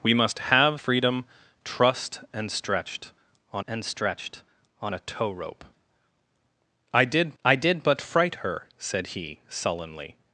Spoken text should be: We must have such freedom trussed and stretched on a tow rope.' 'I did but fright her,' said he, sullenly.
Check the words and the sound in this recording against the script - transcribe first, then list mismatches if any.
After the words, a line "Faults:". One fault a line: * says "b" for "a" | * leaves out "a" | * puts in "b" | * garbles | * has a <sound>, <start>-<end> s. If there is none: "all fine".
We must have freedom trussed and stretched on and stretched on a tow rope.' 'I did I did but fright her,' said he, sullenly.
Faults:
* leaves out "such"
* puts in "and stretched on"
* puts in "I did"